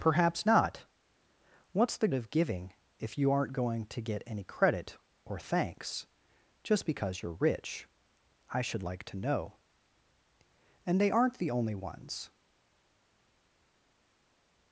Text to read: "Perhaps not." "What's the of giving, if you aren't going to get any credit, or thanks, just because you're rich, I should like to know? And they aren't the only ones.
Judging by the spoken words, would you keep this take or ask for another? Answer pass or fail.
pass